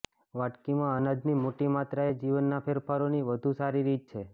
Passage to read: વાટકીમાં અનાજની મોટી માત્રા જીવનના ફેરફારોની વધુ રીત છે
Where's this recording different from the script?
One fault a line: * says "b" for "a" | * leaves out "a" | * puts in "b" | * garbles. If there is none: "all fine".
* puts in "એ"
* puts in "સારી"